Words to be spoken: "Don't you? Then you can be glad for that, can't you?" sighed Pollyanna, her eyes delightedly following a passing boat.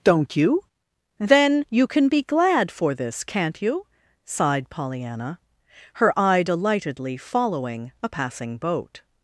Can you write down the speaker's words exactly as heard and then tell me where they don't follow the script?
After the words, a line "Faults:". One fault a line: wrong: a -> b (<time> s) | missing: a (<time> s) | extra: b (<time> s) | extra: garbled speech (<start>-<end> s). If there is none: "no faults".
"Don't you? Then you can be glad for this, can't you?" sighed Pollyanna, her eye delightedly following a passing boat.
Faults:
wrong: that -> this (3.0 s)
wrong: eyes -> eye (6.2 s)